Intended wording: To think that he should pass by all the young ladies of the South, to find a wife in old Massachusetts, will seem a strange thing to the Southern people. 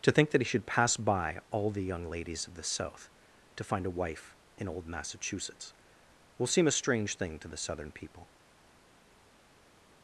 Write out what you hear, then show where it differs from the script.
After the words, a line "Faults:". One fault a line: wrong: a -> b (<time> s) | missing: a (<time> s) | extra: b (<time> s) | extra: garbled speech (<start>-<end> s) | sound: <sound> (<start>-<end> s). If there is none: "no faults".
To think that he should pass by all the young ladies of the South, to find a wife in old Massachusetts, will seem a strange thing to the Southern people.
Faults:
no faults